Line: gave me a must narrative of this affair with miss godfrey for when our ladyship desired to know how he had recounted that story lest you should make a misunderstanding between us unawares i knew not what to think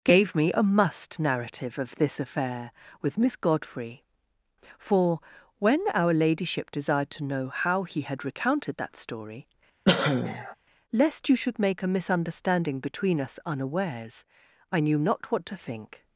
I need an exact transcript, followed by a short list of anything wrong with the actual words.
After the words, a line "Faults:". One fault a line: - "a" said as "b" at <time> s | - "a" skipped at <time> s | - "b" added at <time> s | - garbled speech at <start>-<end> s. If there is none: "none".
gave me a must narrative of this affair with miss godfrey for when our ladyship desired to know how he had recounted that story lest you should make a misunderstanding between us unawares i knew not what to think
Faults:
none